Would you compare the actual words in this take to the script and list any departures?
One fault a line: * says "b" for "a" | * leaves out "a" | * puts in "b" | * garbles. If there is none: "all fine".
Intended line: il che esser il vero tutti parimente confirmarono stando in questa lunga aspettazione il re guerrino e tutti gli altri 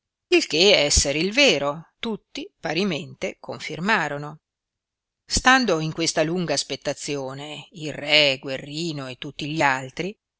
all fine